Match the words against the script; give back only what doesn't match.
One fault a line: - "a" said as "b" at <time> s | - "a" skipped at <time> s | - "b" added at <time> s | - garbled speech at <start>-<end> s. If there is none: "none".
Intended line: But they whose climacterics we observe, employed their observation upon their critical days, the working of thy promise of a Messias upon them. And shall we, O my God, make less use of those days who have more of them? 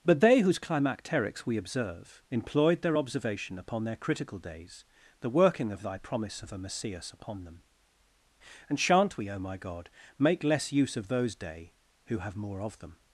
- "shall" said as "shan't" at 8.8 s
- "days" said as "day" at 11.4 s